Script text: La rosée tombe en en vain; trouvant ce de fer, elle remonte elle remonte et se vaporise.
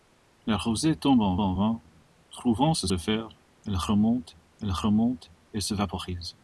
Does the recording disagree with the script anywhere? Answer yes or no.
no